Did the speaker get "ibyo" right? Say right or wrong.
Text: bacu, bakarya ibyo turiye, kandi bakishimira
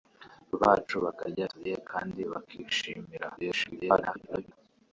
wrong